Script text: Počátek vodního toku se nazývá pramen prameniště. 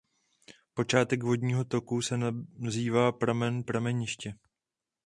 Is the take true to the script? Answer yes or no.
yes